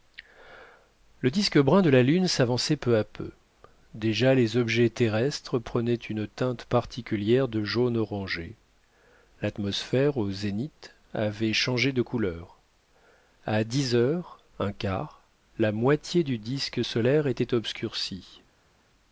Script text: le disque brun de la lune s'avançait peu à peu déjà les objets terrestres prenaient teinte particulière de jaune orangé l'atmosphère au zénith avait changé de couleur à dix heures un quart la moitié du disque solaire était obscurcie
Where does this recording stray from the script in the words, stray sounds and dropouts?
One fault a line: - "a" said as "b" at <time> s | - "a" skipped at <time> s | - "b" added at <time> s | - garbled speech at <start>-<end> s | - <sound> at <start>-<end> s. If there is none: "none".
- "une" added at 5.9 s